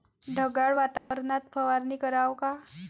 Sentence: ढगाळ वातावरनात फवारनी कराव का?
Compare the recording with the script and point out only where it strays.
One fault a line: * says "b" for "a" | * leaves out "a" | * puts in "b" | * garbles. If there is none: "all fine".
all fine